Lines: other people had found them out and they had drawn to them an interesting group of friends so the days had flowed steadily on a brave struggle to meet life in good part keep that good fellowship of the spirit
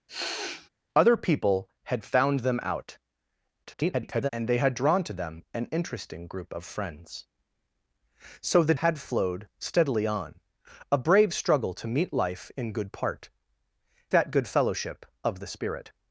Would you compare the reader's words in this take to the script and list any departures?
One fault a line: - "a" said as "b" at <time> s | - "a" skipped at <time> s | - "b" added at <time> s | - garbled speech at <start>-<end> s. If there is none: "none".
- garbled speech at 3.6-4.3 s
- "days" skipped at 8.7 s
- "keep" skipped at 13.3 s